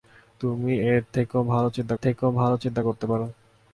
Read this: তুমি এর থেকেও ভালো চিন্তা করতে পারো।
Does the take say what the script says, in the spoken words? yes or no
no